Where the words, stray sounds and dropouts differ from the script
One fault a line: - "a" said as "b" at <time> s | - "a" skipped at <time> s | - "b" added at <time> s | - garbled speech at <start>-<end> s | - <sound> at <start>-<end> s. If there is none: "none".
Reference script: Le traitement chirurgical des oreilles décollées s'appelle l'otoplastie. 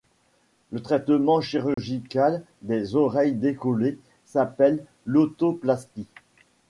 - dropout at 1.7-1.8 s